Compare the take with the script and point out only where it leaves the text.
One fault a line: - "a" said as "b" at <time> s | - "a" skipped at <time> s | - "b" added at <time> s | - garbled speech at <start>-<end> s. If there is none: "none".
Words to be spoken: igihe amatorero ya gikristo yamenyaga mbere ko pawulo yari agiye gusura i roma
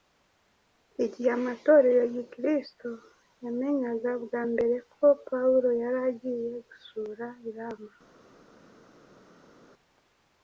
- "bwa" added at 4.2 s